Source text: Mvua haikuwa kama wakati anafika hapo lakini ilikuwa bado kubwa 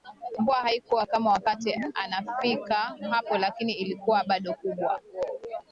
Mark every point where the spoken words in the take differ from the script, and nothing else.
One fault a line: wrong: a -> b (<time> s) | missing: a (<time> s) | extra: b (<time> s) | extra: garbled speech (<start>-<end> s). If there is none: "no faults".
no faults